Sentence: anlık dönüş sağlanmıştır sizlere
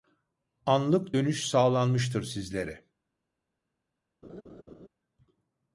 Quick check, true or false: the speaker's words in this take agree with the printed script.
true